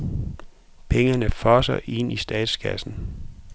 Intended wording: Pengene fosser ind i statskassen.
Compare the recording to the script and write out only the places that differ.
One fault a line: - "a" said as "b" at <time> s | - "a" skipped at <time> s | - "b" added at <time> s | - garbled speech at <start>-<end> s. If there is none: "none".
none